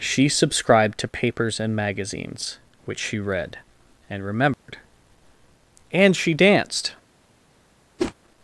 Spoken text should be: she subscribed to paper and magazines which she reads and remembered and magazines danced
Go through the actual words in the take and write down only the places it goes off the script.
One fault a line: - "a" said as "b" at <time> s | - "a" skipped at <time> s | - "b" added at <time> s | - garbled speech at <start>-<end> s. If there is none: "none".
- "paper" said as "papers" at 1.1 s
- "reads" said as "read" at 3.2 s
- "magazines" said as "she" at 6.2 s